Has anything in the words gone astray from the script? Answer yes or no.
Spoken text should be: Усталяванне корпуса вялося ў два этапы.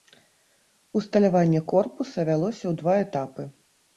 no